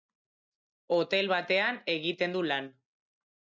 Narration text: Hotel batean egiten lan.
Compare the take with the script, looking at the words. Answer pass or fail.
fail